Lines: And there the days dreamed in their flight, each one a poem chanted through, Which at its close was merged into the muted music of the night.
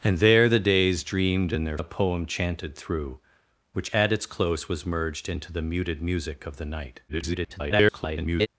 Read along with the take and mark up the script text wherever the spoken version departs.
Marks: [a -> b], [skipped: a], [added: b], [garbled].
And there the days dreamed in their [skipped: flight, each one] a poem chanted through, Which at its close was merged into the muted music of the night. [garbled]